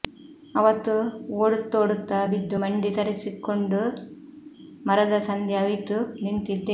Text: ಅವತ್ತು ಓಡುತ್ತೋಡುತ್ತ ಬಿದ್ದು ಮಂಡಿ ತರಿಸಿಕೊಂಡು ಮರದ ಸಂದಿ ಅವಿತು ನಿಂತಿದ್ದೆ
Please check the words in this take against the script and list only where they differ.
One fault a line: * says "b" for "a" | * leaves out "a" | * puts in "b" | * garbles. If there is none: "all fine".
all fine